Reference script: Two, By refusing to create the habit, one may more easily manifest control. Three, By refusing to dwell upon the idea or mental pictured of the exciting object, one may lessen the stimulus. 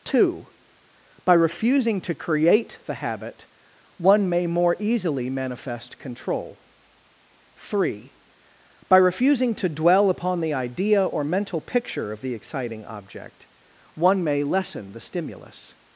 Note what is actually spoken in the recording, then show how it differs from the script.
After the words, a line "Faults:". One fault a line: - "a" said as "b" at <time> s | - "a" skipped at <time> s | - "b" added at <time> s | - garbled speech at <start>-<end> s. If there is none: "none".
Two, By refusing to create the habit, one may more easily manifest control. Three, By refusing to dwell upon the idea or mental picture of the exciting object, one may lessen the stimulus.
Faults:
- "pictured" said as "picture" at 11.6 s